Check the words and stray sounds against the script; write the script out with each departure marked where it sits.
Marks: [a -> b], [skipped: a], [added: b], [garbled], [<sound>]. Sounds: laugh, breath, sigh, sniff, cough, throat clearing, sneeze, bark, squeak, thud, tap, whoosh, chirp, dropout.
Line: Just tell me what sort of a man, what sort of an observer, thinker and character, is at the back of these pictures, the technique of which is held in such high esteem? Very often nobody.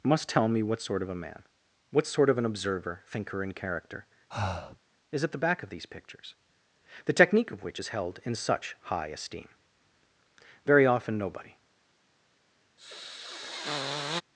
[Just -> Must] tell me what sort of a man, what sort of an observer, thinker and character, [breath] is at the back of these pictures, the technique of which is held in such high esteem? Very often nobody. [sniff]